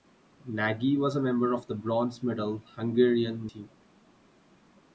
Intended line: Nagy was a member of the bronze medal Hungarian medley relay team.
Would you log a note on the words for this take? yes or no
yes